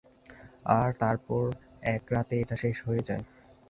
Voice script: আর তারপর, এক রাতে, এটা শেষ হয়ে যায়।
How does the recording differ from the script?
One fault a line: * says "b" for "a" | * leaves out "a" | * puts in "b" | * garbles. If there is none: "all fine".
all fine